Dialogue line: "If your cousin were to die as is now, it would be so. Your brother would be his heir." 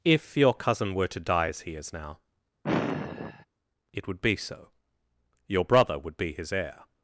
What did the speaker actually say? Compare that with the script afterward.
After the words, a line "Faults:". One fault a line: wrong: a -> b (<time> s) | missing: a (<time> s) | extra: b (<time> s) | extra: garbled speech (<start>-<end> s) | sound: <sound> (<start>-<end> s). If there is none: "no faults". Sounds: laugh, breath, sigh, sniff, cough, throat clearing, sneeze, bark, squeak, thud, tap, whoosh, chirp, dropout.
"If your cousin were to die as he is now, it would be so. Your brother would be his heir."
Faults:
extra: he (1.6 s)
sound: sigh (2.6-3.5 s)